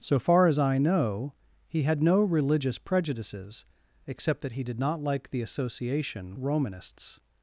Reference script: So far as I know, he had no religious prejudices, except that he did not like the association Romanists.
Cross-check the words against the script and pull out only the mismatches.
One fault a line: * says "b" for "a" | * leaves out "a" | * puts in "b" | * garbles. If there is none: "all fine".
all fine